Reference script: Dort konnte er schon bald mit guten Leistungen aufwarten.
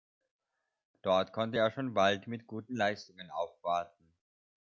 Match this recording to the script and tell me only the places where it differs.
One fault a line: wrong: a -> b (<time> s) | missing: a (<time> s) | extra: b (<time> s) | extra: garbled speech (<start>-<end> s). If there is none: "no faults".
no faults